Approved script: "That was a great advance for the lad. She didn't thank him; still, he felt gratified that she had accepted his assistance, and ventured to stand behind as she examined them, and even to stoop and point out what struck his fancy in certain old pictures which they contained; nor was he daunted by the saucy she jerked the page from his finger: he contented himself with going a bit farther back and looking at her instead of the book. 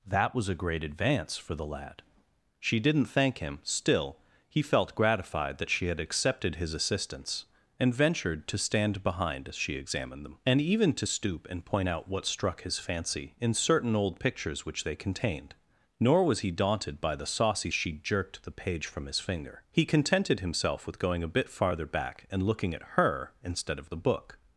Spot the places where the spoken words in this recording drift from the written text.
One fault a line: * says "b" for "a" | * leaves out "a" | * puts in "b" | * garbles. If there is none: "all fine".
all fine